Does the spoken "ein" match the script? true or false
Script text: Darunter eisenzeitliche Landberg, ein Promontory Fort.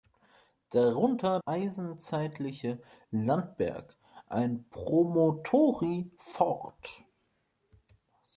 true